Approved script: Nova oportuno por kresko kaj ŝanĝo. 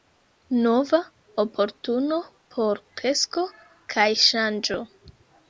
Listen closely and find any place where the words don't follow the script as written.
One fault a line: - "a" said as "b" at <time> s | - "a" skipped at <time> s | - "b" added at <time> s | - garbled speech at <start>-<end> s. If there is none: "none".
none